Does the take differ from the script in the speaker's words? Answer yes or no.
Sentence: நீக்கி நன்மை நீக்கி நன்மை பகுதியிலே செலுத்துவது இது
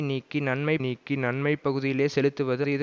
no